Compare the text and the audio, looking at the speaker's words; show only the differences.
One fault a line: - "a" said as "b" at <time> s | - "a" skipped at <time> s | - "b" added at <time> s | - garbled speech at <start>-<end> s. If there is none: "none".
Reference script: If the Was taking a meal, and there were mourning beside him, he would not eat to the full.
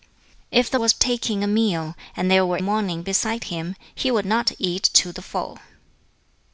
none